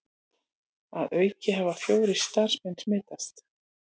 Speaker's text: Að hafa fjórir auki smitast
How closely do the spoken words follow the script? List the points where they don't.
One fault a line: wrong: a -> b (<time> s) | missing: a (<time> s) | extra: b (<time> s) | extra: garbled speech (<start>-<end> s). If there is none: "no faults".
extra: auki (1.2 s)
wrong: auki -> starfsmenn (2.2 s)